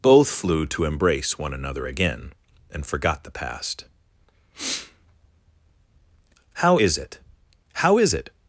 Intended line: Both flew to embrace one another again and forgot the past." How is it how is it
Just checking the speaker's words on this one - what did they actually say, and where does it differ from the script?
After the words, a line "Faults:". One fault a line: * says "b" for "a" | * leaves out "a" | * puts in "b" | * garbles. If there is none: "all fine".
Both flew to embrace one another again and forgot the past." How is it how is it
Faults:
all fine